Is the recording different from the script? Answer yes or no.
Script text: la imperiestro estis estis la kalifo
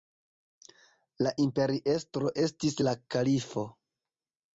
yes